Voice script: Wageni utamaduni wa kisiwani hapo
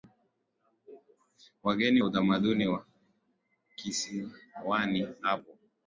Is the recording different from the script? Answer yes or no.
no